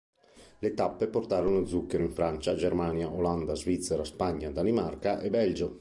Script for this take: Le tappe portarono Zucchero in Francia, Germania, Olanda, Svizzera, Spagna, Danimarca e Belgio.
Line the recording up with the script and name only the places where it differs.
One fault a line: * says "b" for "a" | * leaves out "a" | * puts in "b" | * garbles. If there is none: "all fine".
all fine